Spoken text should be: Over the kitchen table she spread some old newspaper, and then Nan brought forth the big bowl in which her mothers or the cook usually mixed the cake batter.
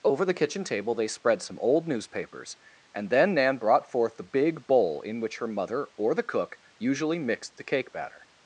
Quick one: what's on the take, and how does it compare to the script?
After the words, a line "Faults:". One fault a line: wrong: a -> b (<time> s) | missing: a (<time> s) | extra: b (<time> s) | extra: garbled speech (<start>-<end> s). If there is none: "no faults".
Over the kitchen table they spread some old newspapers, and then Nan brought forth the big bowl in which her mother or the cook usually mixed the cake batter.
Faults:
wrong: she -> they (0.9 s)
wrong: newspaper -> newspapers (1.9 s)
wrong: mothers -> mother (5.5 s)